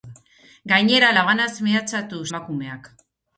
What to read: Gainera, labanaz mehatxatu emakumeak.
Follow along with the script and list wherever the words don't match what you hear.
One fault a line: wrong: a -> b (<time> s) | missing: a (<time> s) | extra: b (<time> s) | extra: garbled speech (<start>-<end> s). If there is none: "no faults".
no faults